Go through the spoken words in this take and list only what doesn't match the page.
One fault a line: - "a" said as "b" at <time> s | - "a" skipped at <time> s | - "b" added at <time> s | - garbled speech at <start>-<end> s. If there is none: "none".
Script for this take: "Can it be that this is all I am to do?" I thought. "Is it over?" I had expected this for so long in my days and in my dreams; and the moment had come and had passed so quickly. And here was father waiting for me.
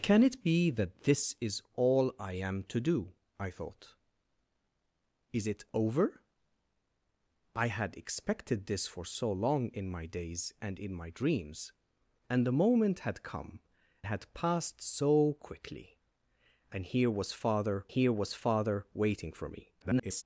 - "and" skipped at 13.6 s
- "here was father" added at 17.9 s
- garbled speech at 19.8-20.2 s